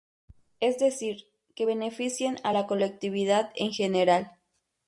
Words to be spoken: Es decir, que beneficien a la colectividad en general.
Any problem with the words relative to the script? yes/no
no